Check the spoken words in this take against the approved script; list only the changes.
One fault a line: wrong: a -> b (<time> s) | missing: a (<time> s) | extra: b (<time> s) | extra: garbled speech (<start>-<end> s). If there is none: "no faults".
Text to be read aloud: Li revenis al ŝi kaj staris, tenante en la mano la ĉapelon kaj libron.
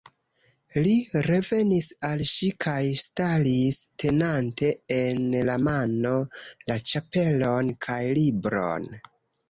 no faults